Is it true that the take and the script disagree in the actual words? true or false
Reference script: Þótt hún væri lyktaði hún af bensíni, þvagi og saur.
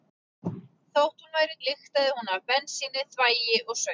false